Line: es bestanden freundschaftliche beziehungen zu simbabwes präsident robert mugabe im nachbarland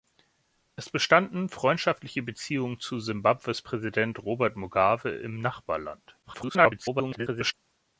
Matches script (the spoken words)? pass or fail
fail